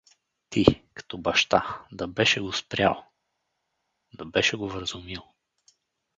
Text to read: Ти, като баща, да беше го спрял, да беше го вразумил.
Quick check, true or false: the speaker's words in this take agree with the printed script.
true